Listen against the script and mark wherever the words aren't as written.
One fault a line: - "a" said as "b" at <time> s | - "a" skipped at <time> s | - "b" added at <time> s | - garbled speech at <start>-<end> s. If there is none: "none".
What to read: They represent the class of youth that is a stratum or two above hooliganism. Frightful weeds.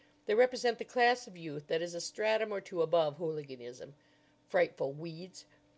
none